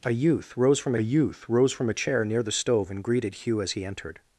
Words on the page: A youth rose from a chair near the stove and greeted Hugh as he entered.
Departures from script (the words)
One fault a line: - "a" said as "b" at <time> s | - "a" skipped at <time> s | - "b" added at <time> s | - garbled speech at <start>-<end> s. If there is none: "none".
- "youth rose from" added at 1.0 s